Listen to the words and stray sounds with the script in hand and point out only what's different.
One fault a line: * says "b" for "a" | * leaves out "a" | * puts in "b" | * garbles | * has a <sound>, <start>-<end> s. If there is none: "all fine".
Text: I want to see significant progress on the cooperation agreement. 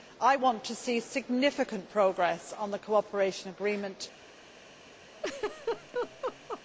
* has a laugh, 5.1-6.6 s